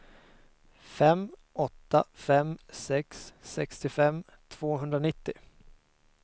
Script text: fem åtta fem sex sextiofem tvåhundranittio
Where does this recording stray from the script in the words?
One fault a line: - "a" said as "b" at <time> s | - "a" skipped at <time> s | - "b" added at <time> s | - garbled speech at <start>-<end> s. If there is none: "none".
none